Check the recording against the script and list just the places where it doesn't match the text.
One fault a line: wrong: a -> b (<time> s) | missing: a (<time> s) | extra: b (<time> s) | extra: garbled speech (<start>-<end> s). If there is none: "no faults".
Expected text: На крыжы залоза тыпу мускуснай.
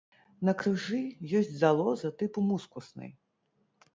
extra: ёсць (1.4 s)